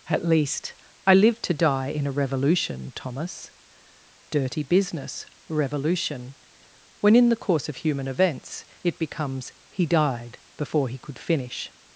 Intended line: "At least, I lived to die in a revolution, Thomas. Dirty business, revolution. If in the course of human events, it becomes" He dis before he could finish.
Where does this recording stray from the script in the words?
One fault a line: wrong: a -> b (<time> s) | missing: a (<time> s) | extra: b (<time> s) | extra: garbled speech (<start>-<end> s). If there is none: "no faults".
wrong: If -> When (7.0 s)
wrong: dis -> died (9.9 s)